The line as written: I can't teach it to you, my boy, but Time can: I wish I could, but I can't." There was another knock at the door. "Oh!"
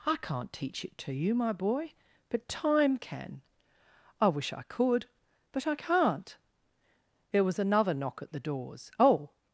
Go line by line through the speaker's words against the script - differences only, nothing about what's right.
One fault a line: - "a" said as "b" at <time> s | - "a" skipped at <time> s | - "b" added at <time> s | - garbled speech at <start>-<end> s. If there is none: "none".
- "door" said as "doors" at 8.4 s